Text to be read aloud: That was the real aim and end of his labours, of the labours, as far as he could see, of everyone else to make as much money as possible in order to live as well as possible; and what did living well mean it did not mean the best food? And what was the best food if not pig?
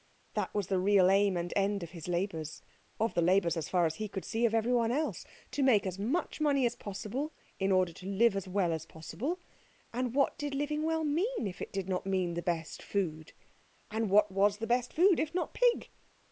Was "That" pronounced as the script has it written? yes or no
yes